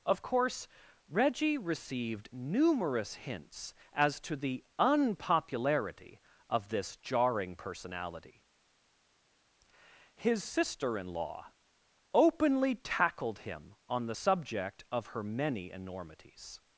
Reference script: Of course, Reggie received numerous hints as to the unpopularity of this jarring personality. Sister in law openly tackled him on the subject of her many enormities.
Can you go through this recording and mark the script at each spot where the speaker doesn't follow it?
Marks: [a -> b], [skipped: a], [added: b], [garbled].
Of course, Reggie received numerous hints as to the unpopularity of this jarring personality. [added: His] Sister in law openly tackled him on the subject of her many enormities.